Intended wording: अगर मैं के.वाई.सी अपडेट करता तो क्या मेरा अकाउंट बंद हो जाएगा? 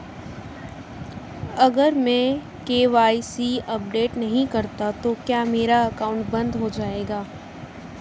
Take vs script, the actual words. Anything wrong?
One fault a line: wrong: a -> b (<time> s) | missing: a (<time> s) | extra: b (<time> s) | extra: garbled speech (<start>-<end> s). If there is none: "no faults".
extra: नहीं (4.2 s)